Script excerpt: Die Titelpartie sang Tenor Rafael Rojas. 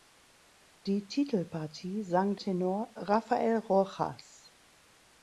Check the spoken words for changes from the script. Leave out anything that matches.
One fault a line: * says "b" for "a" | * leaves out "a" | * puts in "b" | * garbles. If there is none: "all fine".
all fine